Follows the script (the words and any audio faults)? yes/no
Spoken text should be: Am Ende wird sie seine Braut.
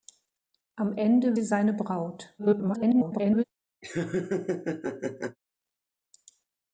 no